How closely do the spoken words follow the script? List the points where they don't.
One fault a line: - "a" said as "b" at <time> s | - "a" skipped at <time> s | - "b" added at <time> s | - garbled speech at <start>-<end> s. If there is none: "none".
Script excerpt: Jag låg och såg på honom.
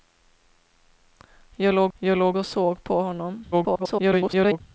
- "jag låg" added at 2.0 s
- garbled speech at 3.5-4.6 s